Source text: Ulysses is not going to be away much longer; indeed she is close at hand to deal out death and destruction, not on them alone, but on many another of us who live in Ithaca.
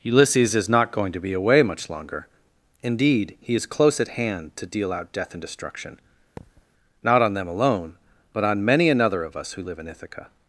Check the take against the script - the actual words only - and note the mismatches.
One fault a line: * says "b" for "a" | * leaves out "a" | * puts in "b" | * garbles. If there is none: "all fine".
* says "he" for "she"